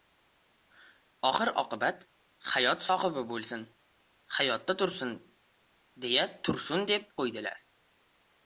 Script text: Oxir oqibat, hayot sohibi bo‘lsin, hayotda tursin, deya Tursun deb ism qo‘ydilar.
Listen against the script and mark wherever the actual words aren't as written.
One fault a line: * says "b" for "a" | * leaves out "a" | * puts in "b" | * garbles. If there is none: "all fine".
* leaves out "ism"